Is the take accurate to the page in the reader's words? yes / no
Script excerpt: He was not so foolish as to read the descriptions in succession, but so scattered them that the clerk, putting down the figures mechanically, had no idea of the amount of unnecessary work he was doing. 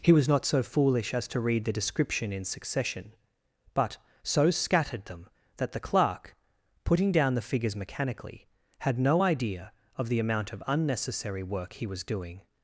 no